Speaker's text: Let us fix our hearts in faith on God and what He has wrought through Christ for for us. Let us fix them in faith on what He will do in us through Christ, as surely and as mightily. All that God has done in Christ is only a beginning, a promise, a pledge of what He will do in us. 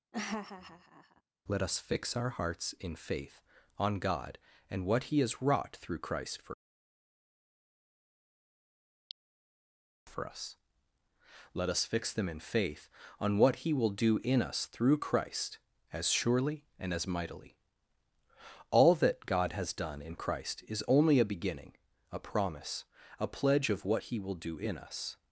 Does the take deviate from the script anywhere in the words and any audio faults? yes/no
yes